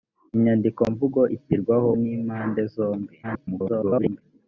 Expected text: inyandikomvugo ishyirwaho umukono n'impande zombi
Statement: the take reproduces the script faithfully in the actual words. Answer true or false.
false